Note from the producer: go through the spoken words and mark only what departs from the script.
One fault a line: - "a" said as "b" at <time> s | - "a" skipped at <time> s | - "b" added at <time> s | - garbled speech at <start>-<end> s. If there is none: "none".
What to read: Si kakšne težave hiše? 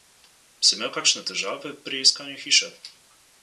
- "imel" added at 0.8 s
- "pri iskanju" added at 1.9 s